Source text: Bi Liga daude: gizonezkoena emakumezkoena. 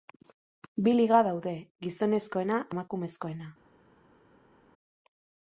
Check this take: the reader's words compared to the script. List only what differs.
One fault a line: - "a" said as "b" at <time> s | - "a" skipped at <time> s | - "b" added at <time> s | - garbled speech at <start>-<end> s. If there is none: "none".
none